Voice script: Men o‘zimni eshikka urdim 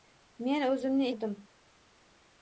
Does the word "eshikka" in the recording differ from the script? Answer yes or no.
yes